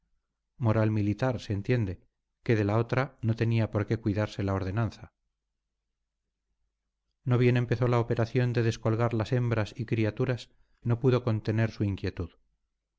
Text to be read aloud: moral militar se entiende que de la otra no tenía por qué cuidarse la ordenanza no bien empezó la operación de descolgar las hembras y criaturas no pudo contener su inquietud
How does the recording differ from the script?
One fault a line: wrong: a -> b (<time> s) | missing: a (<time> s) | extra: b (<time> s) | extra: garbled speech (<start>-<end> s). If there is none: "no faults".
no faults